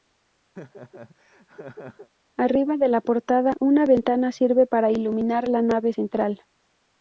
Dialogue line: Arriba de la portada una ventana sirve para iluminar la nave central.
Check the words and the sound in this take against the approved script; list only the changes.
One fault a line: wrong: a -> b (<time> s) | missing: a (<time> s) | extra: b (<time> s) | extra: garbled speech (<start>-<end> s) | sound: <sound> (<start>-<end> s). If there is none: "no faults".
sound: laugh (0.6-2.1 s)